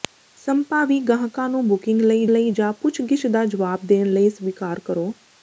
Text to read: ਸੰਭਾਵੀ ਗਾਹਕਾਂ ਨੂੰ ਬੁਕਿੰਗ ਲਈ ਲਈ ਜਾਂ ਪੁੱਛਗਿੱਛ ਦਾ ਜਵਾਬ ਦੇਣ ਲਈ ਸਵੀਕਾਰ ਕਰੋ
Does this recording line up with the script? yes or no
yes